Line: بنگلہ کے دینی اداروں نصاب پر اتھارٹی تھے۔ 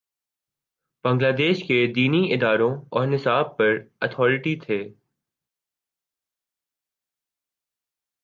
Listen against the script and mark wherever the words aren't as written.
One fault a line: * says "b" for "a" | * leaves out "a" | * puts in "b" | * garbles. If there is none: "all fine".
* puts in "دیش"
* puts in "اور"